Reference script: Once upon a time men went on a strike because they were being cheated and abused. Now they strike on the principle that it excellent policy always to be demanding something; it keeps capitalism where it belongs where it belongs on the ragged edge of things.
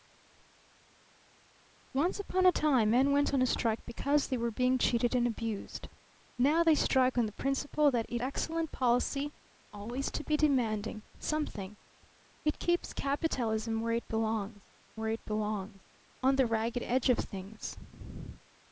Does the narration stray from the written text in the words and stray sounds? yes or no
no